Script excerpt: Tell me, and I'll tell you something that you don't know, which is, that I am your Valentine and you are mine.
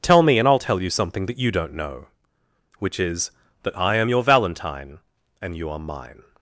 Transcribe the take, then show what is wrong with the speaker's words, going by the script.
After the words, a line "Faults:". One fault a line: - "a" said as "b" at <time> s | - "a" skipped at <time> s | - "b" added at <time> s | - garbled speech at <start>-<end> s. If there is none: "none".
Tell me, and I'll tell you something that you don't know, which is, that I am your Valentine and you are mine.
Faults:
none